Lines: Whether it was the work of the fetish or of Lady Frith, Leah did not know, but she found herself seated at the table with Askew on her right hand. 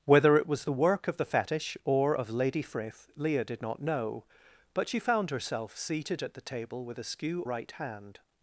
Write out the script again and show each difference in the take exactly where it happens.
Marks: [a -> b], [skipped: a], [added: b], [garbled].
Whether it was the work of the fetish or of Lady Frith, Leah did not know, but she found herself seated at the table with Askew [skipped: on her] right hand.